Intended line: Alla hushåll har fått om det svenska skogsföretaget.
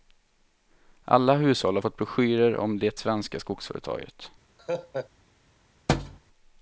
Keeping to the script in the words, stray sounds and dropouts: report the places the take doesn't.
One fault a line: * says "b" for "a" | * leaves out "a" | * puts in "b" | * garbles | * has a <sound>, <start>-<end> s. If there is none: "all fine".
* puts in "broschyrer"
* has a laugh, 4.6-5.1 s
* has a thud, 5.9-6.2 s